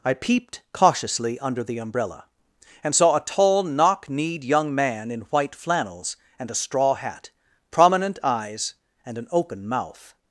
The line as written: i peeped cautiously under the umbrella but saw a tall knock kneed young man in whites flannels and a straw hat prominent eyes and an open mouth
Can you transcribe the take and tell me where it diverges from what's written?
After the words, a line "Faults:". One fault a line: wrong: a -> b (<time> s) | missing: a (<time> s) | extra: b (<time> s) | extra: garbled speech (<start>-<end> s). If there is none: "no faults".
i peeped cautiously under the umbrella and saw a tall knock kneed young man in white flannels and a straw hat prominent eyes and an open mouth
Faults:
wrong: but -> and (2.8 s)
wrong: whites -> white (5.3 s)